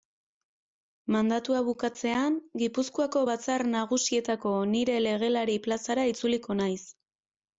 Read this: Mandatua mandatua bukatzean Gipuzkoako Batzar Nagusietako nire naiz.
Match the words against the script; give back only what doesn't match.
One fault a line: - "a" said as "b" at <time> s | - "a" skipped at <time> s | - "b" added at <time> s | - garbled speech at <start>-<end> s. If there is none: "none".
- "mandatua" skipped at 1.6 s
- "legelari plazara itzuliko" added at 5.1 s